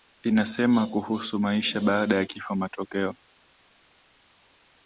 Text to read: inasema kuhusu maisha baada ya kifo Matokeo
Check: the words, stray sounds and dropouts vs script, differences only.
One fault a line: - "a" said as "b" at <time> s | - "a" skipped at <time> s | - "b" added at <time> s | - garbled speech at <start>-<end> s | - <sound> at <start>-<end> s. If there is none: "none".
none